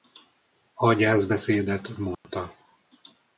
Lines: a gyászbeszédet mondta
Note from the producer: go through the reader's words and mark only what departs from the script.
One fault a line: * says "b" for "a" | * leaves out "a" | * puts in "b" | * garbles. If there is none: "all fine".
all fine